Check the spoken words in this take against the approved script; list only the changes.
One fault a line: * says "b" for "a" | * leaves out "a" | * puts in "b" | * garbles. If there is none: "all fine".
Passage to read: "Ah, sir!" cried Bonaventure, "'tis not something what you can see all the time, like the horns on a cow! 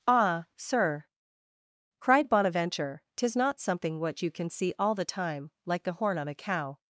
* says "horn" for "horns"